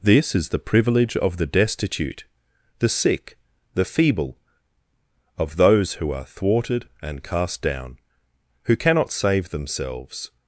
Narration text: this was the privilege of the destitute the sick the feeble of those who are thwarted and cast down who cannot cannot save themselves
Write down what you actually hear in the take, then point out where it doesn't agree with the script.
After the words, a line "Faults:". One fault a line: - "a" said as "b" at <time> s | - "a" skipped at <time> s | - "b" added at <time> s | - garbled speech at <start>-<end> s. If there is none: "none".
this is the privilege of the destitute the sick the feeble of those who are thwarted and cast down who cannot save themselves
Faults:
- "was" said as "is" at 0.3 s
- "cannot" skipped at 9.1 s